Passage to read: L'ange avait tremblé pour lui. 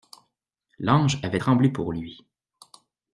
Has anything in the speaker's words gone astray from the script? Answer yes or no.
no